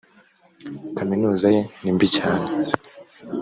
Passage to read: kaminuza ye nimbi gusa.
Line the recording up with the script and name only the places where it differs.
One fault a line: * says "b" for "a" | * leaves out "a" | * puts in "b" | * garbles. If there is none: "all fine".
* says "cyane" for "gusa"